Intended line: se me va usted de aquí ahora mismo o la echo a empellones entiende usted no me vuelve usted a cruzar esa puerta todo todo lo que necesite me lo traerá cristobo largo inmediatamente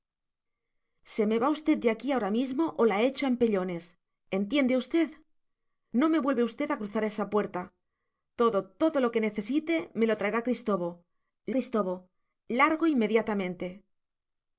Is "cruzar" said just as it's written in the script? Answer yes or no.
yes